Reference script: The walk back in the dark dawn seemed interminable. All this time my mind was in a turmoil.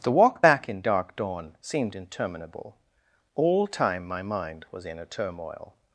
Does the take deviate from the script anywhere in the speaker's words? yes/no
yes